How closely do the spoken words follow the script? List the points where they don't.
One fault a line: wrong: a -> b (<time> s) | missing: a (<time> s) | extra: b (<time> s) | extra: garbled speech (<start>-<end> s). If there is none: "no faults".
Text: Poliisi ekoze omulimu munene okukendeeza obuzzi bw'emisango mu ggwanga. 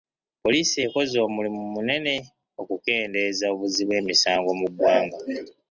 no faults